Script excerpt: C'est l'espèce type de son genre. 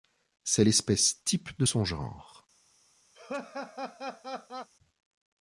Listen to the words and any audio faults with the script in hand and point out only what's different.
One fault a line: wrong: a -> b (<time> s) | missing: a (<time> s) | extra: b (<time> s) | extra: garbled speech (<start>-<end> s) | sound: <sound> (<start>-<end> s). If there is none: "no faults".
sound: laugh (3.1-4.7 s)